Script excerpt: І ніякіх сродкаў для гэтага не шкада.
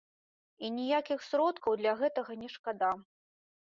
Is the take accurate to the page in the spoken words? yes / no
yes